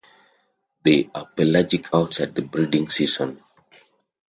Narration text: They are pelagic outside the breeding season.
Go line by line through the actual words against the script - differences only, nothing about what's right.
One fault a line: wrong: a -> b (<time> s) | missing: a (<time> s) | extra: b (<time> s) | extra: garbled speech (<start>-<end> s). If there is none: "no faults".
no faults